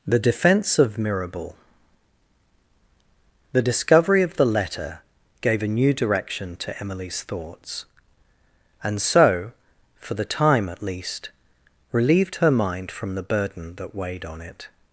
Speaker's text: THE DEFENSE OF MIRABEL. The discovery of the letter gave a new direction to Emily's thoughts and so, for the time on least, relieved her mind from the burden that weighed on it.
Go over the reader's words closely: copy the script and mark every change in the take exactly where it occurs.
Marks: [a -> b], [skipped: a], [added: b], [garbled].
THE DEFENSE OF MIRABEL. The discovery of the letter gave a new direction to Emily's thoughts and so, for the time [on -> at] least, relieved her mind from the burden that weighed on it.